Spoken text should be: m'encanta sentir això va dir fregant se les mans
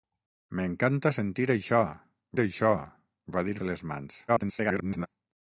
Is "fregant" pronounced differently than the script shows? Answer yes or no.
yes